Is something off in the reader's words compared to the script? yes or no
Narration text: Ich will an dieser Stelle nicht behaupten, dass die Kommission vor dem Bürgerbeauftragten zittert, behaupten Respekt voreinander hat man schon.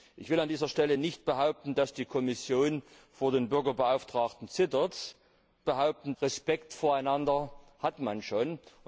no